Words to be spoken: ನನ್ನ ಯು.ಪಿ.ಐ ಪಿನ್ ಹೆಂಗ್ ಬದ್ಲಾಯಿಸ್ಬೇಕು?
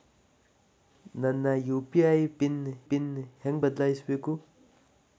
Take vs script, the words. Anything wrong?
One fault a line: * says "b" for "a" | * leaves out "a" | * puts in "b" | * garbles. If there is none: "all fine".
* puts in "ಪಿನ್"